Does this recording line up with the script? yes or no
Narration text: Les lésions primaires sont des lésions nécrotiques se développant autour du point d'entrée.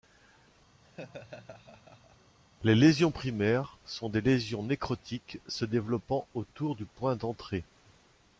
yes